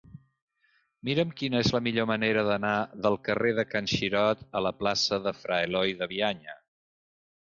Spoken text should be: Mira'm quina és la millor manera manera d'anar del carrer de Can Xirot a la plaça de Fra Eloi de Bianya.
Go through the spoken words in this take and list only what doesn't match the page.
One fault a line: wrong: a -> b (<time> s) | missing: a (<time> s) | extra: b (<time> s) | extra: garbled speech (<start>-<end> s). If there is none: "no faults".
missing: manera (2.5 s)